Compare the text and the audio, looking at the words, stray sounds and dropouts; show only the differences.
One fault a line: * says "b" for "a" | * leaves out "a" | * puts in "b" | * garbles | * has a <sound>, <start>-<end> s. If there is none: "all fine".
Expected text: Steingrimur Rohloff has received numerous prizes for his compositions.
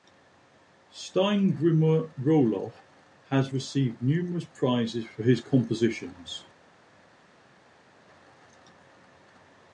all fine